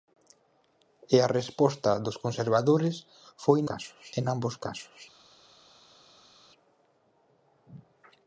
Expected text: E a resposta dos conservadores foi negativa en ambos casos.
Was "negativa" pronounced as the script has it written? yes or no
no